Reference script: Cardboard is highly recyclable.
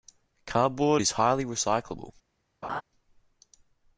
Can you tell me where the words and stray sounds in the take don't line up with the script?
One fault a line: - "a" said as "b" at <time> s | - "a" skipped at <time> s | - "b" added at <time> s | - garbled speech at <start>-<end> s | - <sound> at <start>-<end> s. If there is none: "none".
- laugh at 2.6-2.8 s